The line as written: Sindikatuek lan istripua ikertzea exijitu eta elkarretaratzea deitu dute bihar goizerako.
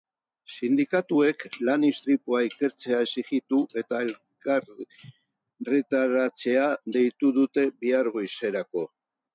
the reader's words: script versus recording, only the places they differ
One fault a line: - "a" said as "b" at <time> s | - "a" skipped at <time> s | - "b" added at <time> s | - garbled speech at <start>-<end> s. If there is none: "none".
none